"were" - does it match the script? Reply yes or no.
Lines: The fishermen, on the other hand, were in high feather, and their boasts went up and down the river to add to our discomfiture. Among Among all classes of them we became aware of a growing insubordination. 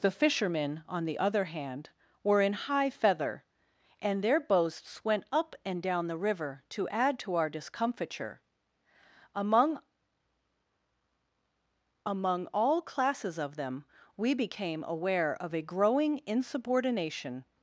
yes